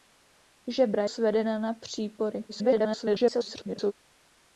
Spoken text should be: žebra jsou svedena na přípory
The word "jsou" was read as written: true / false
false